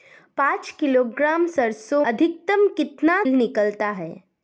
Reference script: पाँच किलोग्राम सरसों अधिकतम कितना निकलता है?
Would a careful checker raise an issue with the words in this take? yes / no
no